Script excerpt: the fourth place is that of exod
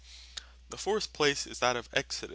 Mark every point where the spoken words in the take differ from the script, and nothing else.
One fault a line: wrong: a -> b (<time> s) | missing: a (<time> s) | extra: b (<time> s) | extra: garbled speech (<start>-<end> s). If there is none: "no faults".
no faults